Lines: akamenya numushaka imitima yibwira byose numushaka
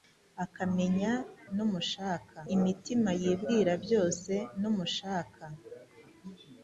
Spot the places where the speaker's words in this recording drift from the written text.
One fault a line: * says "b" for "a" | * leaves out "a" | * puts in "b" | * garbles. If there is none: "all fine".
all fine